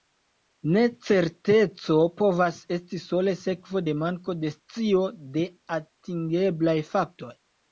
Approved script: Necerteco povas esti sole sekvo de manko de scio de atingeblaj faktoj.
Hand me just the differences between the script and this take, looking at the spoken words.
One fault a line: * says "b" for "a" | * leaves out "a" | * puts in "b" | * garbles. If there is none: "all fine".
all fine